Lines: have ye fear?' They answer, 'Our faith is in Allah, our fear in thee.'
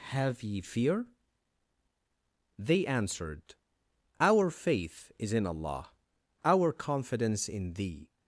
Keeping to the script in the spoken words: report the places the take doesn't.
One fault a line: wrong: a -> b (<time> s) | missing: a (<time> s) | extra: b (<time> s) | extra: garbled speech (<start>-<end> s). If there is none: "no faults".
wrong: answer -> answered (2.9 s)
wrong: fear -> confidence (6.7 s)